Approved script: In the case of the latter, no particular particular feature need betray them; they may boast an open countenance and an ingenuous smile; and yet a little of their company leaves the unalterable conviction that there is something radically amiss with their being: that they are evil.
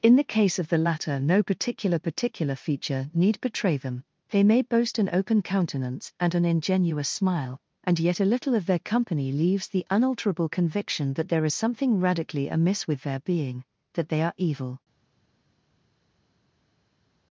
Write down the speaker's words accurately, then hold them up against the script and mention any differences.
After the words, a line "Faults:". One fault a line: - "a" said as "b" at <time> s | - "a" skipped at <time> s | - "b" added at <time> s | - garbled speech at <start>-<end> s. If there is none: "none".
In the case of the latter, no particular particular feature need betray them; they may boast an open countenance and an ingenuous smile; and yet a little of their company leaves the unalterable conviction that there is something radically amiss with their being: that they are evil.
Faults:
none